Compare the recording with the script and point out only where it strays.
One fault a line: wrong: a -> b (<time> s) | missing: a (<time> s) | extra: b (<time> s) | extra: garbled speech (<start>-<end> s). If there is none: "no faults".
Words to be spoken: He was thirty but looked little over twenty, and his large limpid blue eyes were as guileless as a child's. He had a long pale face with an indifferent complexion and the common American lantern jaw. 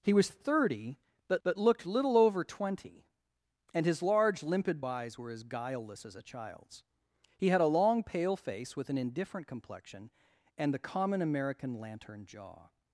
extra: but (1.4 s)
missing: blue (4.8 s)